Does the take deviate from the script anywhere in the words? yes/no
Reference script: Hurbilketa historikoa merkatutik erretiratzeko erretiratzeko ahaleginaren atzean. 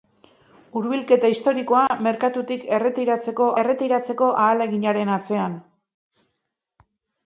no